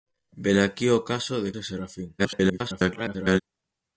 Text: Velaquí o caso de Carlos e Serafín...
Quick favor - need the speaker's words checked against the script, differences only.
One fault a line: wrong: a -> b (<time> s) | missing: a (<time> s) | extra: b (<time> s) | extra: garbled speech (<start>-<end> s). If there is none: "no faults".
missing: Carlos (1.5 s)
extra: garbled speech (2.2-3.4 s)